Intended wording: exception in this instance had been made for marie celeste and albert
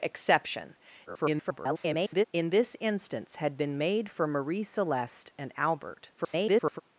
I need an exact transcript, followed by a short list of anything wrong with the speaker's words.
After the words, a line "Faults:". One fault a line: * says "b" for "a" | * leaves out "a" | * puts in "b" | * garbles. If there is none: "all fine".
exception [garbled] in this instance had been made for marie celeste and albert [garbled]
Faults:
* garbles
* garbles